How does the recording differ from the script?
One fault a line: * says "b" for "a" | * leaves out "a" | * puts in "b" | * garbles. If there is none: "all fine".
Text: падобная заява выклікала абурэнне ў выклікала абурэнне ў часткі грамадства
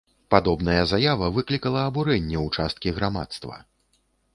* leaves out "выклікала абурэнне ў"